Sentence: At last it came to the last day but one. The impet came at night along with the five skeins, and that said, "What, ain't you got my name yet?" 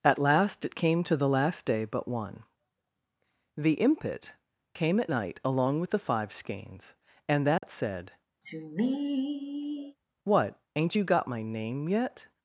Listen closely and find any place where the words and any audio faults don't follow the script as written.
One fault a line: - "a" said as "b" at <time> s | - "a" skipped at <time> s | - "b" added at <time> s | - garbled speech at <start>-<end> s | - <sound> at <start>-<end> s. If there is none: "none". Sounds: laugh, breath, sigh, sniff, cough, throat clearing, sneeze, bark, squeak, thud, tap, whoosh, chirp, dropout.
- dropout at 7.6-7.6 s
- sigh at 8.4-10.0 s